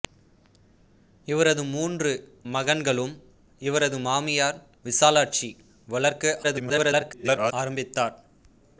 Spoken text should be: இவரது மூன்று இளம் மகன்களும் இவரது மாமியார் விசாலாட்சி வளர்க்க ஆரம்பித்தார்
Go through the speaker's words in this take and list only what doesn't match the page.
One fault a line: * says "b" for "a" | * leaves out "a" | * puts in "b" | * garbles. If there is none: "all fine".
* leaves out "இளம்"
* garbles